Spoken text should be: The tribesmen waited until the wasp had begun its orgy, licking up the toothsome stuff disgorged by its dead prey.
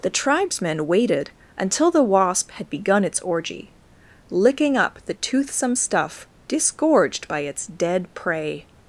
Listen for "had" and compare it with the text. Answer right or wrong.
right